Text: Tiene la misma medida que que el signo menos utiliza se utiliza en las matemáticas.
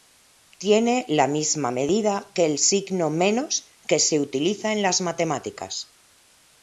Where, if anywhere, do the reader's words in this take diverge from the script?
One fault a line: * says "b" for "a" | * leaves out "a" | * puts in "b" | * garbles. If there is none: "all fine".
* leaves out "que"
* says "que" for "utiliza"